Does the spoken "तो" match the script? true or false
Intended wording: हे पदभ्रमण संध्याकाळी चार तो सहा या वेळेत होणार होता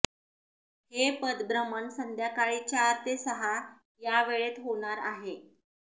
false